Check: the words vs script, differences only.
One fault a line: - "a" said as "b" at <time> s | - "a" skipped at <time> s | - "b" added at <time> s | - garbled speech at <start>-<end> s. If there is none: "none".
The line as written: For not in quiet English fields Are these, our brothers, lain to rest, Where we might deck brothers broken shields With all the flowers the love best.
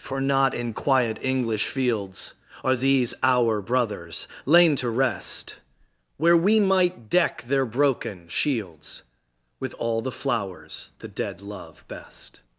- "brothers" said as "their" at 7.4 s
- "dead" added at 11.1 s